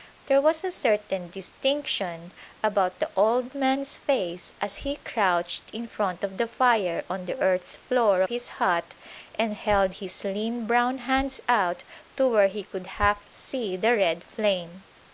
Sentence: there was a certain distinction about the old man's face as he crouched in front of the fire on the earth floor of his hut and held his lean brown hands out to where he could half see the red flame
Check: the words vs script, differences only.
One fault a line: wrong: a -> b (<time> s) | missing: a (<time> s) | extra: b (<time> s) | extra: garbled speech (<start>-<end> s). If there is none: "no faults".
missing: of (8.2 s)